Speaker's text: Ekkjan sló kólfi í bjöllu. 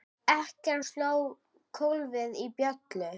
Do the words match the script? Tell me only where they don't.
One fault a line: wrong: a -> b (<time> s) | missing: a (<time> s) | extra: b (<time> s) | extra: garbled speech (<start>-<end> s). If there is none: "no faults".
no faults